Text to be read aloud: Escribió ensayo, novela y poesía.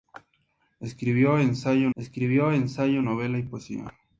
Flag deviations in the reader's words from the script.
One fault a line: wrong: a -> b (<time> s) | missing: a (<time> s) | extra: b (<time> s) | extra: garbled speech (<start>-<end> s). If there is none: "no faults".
extra: escribió ensayo (1.9 s)